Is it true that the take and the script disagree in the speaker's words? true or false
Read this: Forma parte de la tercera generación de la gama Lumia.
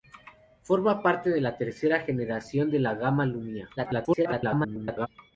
true